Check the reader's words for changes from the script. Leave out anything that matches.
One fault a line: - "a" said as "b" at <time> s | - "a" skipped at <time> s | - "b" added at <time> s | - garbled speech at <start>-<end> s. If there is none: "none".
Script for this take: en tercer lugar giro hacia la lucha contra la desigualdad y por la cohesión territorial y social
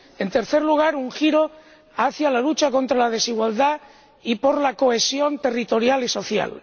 - "un" added at 0.9 s